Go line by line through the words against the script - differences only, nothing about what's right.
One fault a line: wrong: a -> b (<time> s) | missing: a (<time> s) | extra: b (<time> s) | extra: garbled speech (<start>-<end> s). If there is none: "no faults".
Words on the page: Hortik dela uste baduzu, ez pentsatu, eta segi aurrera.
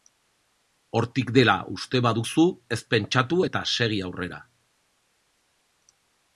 no faults